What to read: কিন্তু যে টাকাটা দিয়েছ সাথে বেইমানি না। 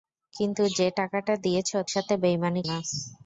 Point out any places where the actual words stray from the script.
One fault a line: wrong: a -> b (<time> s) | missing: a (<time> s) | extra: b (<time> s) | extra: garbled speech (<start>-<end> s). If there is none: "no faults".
no faults